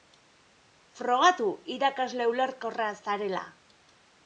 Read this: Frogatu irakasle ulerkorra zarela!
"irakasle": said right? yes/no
yes